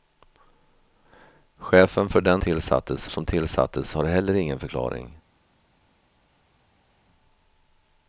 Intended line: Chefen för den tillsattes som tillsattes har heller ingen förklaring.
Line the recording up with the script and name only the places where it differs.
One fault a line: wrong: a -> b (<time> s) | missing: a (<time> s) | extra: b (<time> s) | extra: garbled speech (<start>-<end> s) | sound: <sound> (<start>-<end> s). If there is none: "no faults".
no faults